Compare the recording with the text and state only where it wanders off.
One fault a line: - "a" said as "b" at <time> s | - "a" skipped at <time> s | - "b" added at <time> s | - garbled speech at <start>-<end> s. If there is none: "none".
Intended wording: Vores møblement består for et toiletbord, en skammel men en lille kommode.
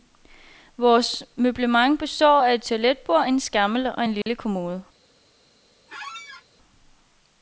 - "for" said as "af" at 2.4 s
- "men" said as "og" at 3.9 s